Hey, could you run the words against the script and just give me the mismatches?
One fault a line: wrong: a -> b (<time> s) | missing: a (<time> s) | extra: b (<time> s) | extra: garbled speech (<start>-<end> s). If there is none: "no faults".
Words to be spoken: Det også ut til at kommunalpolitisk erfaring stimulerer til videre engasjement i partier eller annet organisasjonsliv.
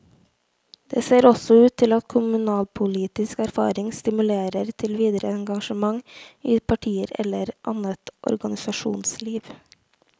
extra: ser (1.1 s)